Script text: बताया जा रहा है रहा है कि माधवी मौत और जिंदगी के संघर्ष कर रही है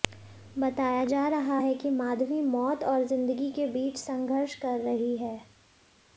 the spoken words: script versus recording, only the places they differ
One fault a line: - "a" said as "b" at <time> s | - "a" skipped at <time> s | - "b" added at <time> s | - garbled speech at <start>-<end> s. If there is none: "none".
- "रहा है" skipped at 1.7 s
- "बीच" added at 3.7 s